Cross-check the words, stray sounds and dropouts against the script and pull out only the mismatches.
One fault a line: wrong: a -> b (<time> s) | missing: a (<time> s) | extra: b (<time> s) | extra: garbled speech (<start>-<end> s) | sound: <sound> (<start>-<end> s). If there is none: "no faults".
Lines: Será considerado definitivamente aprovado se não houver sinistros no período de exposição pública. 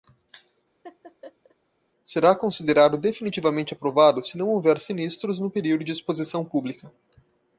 sound: laugh (0.8-1.6 s)